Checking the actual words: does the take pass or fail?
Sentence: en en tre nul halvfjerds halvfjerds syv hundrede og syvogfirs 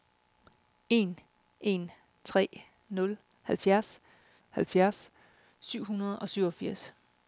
pass